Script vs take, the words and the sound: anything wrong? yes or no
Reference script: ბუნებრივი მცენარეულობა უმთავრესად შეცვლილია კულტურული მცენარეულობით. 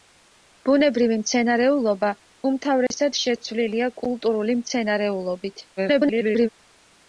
yes